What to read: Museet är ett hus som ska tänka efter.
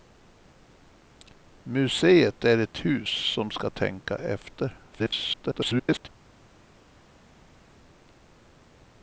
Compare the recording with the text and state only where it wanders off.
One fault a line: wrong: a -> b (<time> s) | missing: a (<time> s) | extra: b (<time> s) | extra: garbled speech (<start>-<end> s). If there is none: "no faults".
extra: garbled speech (4.9-6.1 s)